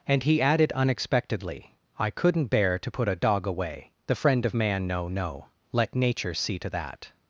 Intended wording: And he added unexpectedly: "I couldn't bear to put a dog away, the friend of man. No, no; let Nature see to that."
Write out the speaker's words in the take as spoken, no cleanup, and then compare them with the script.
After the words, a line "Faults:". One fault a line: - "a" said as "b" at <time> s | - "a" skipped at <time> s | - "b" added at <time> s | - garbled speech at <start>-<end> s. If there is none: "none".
And he added unexpectedly: "I couldn't bear to put a dog away, the friend of man. No, no; let Nature see to that."
Faults:
none